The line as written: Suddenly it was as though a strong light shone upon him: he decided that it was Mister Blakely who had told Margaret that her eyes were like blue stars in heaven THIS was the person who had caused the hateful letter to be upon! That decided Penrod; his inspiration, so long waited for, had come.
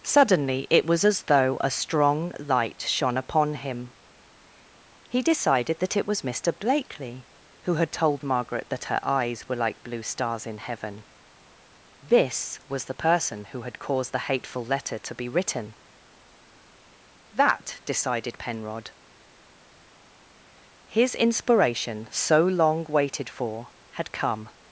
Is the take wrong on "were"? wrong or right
right